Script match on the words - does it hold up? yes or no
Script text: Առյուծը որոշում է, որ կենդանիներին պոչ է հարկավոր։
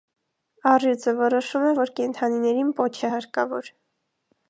yes